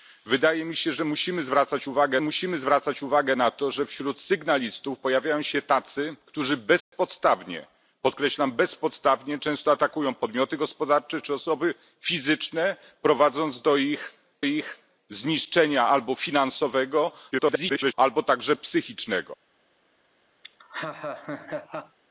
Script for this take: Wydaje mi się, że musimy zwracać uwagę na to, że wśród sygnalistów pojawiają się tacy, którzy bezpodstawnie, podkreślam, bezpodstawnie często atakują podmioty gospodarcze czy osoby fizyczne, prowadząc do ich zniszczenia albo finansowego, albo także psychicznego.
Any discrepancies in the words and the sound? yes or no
yes